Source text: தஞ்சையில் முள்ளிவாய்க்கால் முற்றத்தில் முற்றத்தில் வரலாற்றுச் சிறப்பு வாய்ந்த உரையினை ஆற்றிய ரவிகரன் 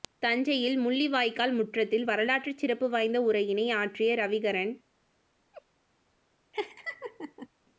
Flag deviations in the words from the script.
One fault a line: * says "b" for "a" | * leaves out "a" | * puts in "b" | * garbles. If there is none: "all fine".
* leaves out "முற்றத்தில்"